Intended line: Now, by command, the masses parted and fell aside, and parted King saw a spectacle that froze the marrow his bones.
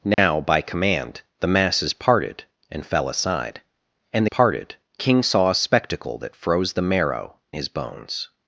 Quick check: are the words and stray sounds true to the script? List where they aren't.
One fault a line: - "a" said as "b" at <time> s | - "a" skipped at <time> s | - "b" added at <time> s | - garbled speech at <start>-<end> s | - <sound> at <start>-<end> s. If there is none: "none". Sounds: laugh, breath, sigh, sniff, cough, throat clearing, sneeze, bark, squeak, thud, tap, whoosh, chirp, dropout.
- dropout at 0.1-0.2 s